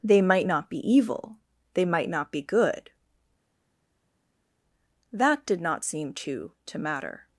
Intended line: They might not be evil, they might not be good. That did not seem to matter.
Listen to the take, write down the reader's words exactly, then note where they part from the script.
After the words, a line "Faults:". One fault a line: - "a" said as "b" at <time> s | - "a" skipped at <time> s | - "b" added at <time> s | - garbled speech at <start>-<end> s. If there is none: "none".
They might not be evil, they might not be good. That did not seem to to matter.
Faults:
- "to" added at 6.7 s